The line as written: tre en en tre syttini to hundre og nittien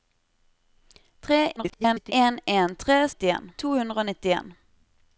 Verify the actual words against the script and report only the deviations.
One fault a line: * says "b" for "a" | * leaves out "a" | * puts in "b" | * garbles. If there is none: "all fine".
* garbles
* says "nittien" for "syttini"